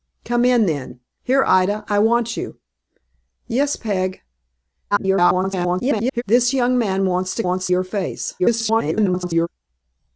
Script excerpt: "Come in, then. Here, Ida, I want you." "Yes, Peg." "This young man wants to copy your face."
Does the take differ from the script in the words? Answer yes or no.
yes